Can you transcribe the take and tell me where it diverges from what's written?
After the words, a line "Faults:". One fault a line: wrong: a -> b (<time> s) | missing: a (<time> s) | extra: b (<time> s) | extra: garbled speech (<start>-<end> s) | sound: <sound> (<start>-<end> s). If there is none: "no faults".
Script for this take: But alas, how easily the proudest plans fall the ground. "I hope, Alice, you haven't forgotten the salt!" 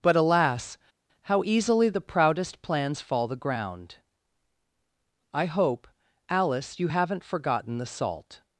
But alas, how easily the proudest plans fall the ground. "I hope, Alice, you haven't forgotten the salt!"
Faults:
no faults